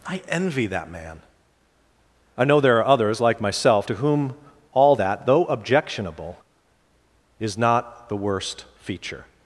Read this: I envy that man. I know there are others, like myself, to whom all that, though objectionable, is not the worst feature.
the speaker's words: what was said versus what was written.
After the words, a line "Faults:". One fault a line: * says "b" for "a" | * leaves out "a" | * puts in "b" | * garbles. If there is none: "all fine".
I envy that man. I know there are others, like myself, to whom all that, though objectionable, is not the worst feature.
Faults:
all fine